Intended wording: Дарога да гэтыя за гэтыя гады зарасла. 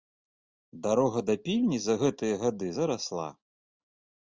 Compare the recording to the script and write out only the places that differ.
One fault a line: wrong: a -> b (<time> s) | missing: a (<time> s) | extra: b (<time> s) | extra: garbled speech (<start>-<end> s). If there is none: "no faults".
wrong: гэтыя -> пільні (1.4 s)